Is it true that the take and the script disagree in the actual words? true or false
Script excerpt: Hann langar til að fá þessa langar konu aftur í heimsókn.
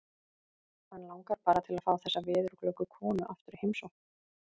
true